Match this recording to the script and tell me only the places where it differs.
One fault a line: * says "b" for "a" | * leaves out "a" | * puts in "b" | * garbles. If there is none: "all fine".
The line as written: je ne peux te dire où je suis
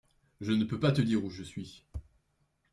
* puts in "pas"